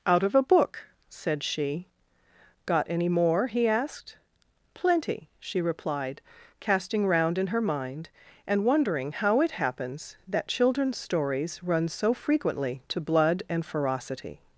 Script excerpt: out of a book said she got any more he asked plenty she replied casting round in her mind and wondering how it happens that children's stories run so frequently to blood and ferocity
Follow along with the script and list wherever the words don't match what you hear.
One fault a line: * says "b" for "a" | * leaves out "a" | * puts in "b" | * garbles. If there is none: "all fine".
all fine